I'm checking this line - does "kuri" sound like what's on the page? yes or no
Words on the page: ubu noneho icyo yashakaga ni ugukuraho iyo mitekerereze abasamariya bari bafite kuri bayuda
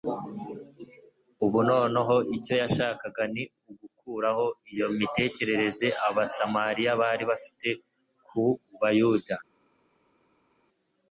no